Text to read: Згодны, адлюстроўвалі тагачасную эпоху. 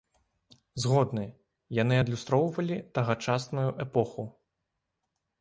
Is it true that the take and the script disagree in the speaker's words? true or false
true